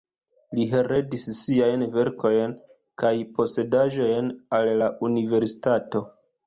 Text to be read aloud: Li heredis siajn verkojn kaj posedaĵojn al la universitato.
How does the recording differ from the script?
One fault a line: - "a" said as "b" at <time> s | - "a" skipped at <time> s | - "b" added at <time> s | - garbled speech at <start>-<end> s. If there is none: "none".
none